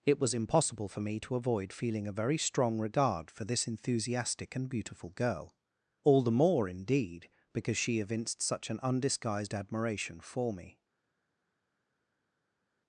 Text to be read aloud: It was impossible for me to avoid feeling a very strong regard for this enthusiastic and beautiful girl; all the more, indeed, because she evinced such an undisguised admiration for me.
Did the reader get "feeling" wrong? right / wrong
right